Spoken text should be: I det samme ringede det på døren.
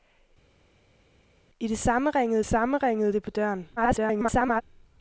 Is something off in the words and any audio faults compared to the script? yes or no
yes